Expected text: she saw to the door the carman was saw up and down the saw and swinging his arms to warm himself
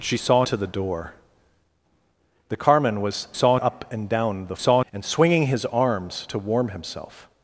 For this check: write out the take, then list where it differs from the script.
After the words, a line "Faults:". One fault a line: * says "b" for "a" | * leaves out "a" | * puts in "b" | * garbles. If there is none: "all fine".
she saw to the door the carman was saw up and down the saw and swinging his arms to warm himself
Faults:
all fine